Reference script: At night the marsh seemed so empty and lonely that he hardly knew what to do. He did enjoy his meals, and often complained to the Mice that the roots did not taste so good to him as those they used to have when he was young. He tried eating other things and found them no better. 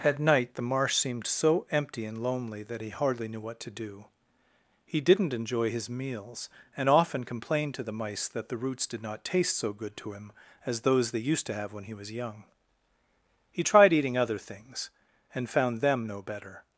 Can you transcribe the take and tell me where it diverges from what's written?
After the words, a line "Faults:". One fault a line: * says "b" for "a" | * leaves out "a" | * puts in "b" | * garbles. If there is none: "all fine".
At night the marsh seemed so empty and lonely that he hardly knew what to do. He didn't enjoy his meals, and often complained to the Mice that the roots did not taste so good to him as those they used to have when he was young. He tried eating other things and found them no better.
Faults:
* says "didn't" for "did"